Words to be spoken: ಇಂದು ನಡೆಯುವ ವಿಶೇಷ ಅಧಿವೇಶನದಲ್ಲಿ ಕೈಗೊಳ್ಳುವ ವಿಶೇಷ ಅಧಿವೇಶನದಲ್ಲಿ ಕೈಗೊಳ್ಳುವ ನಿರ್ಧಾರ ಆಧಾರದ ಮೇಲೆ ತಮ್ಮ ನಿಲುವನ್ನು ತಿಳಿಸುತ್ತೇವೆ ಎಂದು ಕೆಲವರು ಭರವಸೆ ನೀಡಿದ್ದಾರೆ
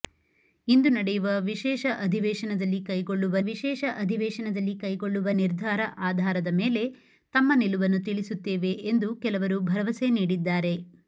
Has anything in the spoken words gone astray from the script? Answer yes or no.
no